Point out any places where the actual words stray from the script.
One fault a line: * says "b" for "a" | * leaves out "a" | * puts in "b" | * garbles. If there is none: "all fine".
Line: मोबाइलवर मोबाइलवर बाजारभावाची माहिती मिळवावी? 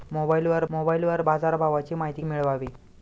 all fine